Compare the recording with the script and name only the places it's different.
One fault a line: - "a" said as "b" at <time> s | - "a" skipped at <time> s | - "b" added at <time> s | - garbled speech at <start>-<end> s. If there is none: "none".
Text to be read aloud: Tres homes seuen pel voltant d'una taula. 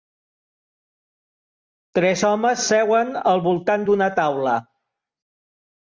- "pel" said as "al" at 3.3 s